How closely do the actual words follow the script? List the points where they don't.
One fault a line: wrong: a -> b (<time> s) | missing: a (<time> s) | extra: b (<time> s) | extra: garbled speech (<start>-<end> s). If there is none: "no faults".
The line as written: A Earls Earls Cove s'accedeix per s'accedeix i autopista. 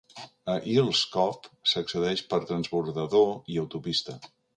missing: Earls (1.0 s)
wrong: s'accedeix -> transbordador (2.5 s)